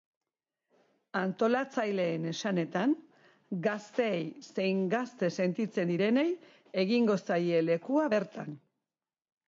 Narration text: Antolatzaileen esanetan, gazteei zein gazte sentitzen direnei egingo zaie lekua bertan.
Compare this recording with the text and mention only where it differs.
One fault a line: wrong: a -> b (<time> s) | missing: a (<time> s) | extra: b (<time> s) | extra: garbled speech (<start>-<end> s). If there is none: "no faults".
no faults